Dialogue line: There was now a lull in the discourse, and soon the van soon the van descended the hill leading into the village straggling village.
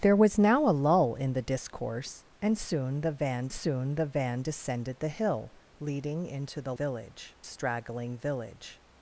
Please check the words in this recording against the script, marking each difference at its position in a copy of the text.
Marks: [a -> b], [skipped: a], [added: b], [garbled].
There was now a lull in the discourse, and soon the van soon the van descended the hill leading into the village straggling village.